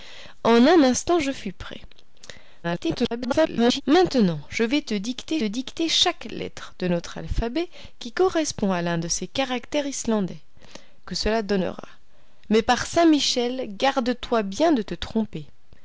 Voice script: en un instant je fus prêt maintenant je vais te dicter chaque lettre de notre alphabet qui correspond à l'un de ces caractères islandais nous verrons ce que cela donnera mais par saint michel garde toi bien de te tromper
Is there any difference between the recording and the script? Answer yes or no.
yes